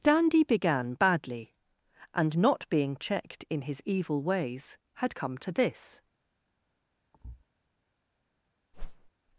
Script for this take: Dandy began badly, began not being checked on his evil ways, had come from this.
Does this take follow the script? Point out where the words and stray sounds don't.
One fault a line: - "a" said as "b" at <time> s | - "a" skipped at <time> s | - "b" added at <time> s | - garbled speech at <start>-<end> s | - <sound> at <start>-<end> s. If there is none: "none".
- "began" said as "and" at 2.1 s
- "on" said as "in" at 3.5 s
- "from" said as "to" at 5.4 s
- thud at 7.1-7.4 s
- whoosh at 8.7-9.1 s